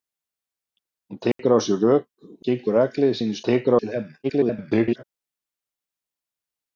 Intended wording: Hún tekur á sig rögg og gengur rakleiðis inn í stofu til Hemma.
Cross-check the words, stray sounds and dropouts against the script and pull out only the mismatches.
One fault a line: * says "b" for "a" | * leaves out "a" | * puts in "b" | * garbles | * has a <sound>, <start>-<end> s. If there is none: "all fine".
* has a dropout, 1.3-1.4 s
* leaves out "og"
* says "tekur" for "stofu"
* garbles